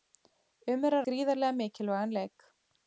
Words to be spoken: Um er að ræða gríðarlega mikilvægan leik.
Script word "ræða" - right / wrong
wrong